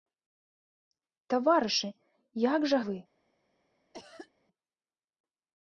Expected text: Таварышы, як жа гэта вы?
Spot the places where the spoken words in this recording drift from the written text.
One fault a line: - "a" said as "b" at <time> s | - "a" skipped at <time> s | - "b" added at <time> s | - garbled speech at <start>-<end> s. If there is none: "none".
- "гэта" skipped at 2.8 s